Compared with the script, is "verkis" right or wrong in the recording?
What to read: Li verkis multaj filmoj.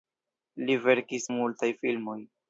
right